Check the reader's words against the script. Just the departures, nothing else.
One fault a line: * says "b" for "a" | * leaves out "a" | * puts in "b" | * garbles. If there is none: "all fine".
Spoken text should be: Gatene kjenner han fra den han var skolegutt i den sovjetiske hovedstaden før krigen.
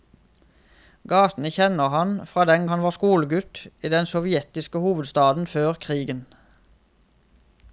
all fine